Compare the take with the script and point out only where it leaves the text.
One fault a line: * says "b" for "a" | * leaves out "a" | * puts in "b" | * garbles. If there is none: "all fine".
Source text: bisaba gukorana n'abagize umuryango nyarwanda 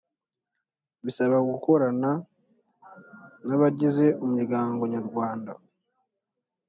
all fine